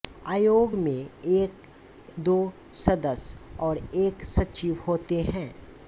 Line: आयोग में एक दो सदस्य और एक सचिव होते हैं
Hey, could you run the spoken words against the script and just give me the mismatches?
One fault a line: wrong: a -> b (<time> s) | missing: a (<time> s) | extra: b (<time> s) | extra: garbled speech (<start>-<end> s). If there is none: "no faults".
no faults